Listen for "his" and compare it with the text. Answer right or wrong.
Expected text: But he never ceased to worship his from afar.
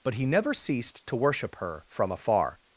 wrong